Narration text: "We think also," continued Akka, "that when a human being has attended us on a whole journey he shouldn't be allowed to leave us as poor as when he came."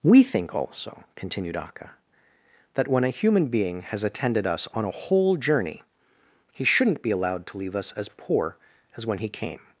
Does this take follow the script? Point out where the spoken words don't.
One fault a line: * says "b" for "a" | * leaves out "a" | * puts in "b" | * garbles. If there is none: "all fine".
all fine